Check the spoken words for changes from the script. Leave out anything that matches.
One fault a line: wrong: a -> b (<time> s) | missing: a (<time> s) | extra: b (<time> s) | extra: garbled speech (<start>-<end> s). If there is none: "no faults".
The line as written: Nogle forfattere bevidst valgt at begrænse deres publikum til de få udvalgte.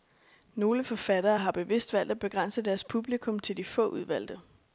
extra: har (1.4 s)